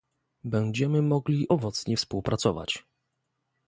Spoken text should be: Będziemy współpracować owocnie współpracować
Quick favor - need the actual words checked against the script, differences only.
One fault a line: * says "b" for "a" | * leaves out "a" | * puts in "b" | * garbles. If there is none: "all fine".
* says "mogli" for "współpracować"